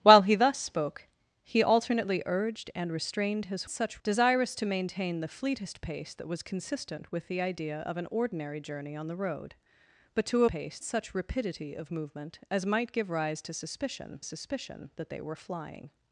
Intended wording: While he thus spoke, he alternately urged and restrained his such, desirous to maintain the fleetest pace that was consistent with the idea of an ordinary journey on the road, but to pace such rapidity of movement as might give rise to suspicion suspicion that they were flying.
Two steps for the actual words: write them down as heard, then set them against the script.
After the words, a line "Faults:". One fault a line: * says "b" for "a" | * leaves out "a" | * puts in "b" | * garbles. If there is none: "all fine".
While he thus spoke, he alternately urged and restrained his such, desirous to maintain the fleetest pace that was consistent with the idea of an ordinary journey on the road, but to pace such rapidity of movement as might give rise to suspicion suspicion that they were flying.
Faults:
all fine